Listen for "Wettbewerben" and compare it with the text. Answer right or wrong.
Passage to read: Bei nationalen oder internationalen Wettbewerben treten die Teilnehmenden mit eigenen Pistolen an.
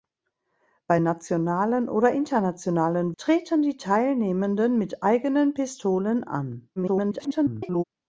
wrong